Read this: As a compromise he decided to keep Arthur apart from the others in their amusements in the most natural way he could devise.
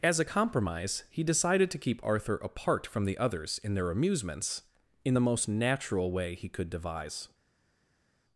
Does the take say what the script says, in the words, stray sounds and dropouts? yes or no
yes